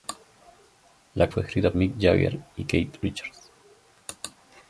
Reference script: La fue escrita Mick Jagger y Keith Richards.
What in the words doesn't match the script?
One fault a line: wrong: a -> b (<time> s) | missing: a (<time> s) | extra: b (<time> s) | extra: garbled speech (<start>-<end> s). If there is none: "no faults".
no faults